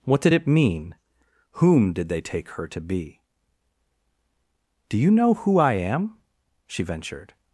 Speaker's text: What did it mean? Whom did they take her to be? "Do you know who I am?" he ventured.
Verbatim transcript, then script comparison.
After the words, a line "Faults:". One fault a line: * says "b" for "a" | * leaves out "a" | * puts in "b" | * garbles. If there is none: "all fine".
What did it mean? Whom did they take her to be? "Do you know who I am?" she ventured.
Faults:
* says "she" for "he"